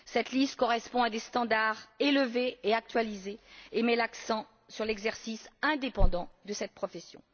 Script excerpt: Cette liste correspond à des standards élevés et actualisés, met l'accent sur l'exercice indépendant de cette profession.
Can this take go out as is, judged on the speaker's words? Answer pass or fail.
fail